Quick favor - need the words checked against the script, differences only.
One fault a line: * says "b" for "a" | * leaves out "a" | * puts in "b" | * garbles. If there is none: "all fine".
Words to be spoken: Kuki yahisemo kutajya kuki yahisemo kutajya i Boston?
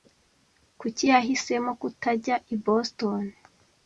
* leaves out "kuki yahisemo kutajya"